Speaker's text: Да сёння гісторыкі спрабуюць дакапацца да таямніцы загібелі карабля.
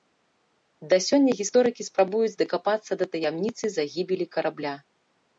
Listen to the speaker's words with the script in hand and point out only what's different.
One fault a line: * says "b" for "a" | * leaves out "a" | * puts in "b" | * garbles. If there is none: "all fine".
all fine